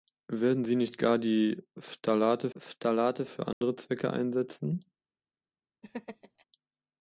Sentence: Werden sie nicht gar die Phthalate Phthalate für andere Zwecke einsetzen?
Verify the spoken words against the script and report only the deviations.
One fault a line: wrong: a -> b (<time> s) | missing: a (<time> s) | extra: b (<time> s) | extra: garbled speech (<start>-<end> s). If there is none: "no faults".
no faults